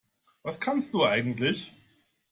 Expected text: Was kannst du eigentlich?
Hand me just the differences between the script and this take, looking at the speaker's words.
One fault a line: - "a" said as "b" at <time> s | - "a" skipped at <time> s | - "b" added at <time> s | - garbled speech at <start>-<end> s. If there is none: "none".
none